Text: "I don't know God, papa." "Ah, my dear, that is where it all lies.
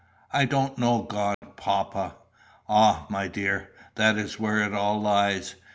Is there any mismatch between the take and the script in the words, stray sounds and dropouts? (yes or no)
yes